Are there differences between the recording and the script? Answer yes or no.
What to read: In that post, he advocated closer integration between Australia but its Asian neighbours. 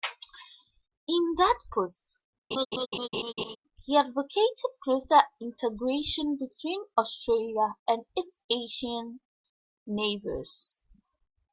yes